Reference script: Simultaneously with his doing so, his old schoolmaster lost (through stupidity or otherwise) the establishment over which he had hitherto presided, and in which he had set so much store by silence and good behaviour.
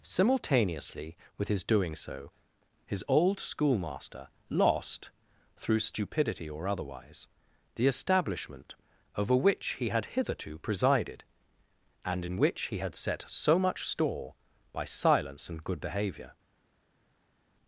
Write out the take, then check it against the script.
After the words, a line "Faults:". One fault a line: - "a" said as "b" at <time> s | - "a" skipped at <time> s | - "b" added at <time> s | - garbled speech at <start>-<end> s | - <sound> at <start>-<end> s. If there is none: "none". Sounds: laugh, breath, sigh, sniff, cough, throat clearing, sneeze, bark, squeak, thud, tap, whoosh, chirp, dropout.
Simultaneously with his doing so, his old schoolmaster lost (through stupidity or otherwise) the establishment over which he had hitherto presided, and in which he had set so much store by silence and good behaviour.
Faults:
none